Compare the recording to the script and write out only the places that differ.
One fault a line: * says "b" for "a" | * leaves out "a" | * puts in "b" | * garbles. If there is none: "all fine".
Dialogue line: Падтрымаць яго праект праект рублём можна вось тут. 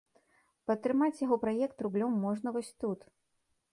* leaves out "праект"